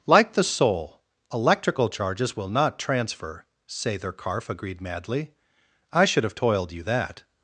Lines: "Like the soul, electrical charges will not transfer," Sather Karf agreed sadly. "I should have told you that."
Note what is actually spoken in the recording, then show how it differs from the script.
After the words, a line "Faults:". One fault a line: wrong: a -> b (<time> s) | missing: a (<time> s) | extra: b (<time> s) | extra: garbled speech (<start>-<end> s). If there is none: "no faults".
"Like the soul, electrical charges will not transfer," Sather Karf agreed madly. "I should have toiled you that."
Faults:
wrong: sadly -> madly (4.8 s)
wrong: told -> toiled (6.3 s)